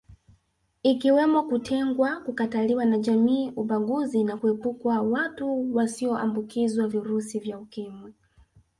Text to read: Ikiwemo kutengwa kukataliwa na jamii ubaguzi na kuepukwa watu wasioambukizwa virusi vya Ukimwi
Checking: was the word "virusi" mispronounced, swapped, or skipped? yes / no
no